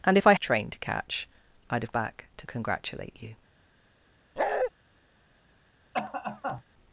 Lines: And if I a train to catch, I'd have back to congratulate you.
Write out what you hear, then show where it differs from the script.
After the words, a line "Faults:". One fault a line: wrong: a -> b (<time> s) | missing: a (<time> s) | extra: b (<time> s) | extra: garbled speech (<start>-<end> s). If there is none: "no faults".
And if I a train to catch, I'd have back to congratulate you.
Faults:
no faults